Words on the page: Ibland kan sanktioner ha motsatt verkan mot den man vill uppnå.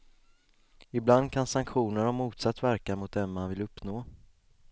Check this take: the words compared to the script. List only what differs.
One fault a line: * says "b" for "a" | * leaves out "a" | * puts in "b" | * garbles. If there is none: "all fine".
all fine